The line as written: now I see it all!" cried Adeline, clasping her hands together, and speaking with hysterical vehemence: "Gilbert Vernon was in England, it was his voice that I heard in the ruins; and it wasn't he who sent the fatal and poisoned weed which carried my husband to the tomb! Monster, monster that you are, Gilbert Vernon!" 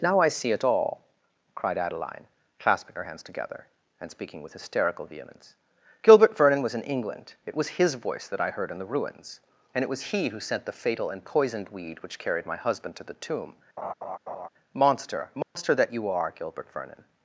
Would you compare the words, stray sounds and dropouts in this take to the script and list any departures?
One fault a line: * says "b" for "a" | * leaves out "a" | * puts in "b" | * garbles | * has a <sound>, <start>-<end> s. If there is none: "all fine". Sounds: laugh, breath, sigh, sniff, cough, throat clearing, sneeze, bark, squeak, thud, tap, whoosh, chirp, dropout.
* says "was" for "wasn't"
* has a laugh, 13.8-14.5 s
* has a dropout, 15.4-15.6 s